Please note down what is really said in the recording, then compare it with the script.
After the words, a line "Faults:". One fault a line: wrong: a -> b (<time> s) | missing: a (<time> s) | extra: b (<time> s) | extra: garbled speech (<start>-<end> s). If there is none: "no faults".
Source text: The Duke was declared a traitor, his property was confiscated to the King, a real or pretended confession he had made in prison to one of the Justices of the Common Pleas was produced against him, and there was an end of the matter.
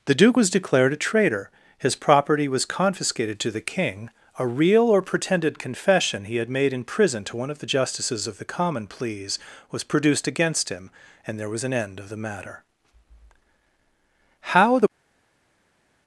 The Duke was declared a traitor, his property was confiscated to the King, a real or pretended confession he had made in prison to one of the Justices of the Common Pleas was produced against him, and there was an end of the matter. How the
Faults:
extra: How the (14.4 s)